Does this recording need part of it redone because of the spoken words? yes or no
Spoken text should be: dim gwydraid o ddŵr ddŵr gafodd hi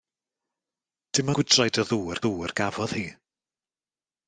no